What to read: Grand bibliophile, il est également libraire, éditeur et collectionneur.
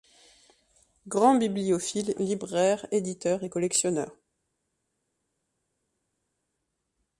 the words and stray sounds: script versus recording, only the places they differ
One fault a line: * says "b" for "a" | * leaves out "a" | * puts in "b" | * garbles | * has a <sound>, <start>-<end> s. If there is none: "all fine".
* leaves out "il est également"